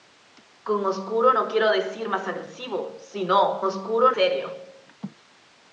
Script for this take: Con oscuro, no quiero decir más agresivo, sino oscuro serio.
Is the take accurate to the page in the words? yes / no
yes